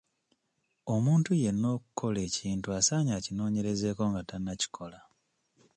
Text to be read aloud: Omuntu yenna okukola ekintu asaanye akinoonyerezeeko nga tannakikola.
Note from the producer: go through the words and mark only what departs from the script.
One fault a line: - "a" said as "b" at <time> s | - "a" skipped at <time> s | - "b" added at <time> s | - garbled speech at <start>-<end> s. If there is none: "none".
none